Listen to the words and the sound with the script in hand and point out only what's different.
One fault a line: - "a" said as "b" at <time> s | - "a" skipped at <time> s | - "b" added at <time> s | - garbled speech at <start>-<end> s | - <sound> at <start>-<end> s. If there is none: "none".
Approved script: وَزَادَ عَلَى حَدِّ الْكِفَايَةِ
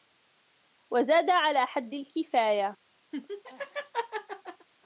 - laugh at 3.1-4.7 s